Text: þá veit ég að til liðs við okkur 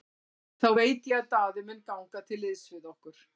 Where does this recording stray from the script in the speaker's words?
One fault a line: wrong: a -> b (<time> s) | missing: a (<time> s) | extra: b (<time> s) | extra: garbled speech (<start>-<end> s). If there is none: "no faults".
extra: daði mun ganga (1.3 s)